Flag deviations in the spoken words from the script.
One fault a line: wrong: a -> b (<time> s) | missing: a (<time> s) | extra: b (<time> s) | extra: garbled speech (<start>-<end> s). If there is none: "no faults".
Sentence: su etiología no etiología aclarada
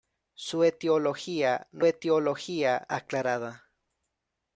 no faults